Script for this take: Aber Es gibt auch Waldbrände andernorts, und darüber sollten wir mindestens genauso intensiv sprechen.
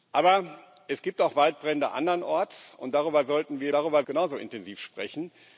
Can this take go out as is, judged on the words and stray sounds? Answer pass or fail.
fail